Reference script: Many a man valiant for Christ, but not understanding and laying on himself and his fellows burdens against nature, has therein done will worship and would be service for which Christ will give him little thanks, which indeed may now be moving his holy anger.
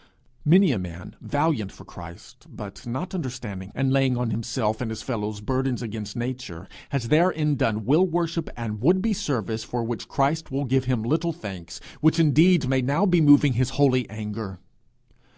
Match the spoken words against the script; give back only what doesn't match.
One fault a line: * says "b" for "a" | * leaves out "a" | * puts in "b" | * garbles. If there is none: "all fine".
all fine